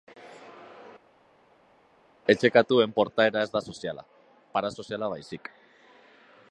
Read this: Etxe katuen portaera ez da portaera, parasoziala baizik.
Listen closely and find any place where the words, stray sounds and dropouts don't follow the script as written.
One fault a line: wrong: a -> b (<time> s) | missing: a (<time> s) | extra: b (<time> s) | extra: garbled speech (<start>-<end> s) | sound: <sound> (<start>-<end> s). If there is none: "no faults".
wrong: portaera -> soziala (3.7 s)